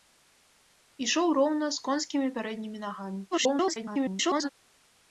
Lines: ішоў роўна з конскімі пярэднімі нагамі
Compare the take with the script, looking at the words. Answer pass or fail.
fail